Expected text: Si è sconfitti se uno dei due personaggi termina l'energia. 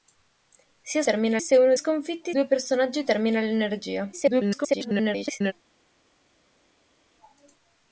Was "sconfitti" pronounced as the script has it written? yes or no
no